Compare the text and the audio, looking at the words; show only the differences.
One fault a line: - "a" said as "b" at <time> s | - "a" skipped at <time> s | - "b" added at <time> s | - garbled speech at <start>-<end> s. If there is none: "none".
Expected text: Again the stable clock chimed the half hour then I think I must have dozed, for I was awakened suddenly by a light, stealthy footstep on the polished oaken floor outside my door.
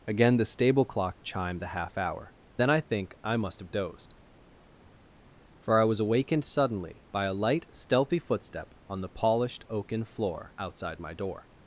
none